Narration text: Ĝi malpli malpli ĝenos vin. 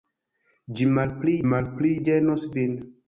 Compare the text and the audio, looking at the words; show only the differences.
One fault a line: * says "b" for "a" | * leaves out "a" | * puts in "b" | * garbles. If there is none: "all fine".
all fine